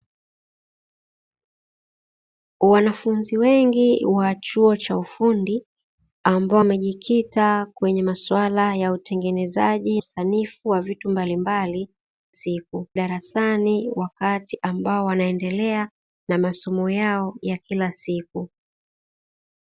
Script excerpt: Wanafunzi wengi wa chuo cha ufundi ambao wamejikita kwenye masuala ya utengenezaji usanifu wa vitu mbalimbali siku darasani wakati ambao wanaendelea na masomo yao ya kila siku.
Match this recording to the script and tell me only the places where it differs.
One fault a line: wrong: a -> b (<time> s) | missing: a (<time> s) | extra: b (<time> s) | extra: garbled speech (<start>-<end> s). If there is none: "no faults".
no faults